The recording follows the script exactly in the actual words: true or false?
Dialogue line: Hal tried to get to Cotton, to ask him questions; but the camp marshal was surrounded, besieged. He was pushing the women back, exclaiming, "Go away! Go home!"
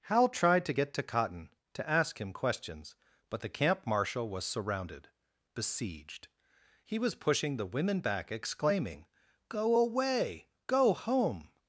true